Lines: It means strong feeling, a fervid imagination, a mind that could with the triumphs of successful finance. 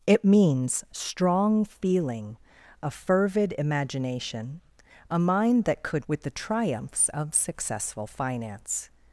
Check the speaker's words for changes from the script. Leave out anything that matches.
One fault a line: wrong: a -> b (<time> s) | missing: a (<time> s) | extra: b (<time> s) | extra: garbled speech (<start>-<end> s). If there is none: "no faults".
no faults